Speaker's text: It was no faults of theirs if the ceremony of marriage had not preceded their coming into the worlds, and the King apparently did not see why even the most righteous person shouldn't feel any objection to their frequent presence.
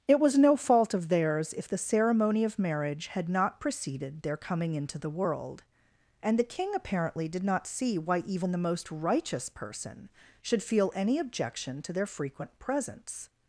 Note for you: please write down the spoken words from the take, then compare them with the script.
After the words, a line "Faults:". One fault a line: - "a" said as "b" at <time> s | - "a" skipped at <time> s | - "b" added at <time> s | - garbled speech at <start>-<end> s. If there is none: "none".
It was no fault of theirs if the ceremony of marriage had not preceded their coming into the world, and the King apparently did not see why even the most righteous person should feel any objection to their frequent presence.
Faults:
- "faults" said as "fault" at 0.6 s
- "worlds" said as "world" at 5.1 s
- "shouldn't" said as "should" at 10.4 s